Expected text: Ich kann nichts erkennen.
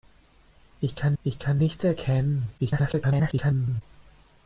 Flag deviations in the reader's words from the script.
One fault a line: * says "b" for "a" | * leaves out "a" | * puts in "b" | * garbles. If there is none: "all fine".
* puts in "ich kann"
* garbles